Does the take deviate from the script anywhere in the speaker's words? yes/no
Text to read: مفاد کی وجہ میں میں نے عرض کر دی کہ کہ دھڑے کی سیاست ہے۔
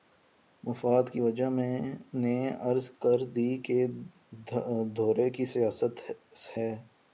yes